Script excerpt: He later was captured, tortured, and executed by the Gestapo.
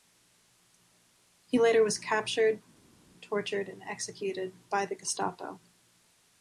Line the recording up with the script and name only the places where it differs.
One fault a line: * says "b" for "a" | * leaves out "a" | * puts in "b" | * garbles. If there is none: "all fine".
all fine